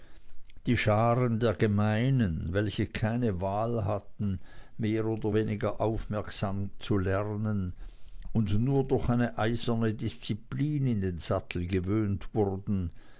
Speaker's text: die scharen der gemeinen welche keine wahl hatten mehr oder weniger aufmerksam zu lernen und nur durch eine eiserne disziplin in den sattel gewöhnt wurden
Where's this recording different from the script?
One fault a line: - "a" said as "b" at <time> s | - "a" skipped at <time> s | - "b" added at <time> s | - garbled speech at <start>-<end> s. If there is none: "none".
none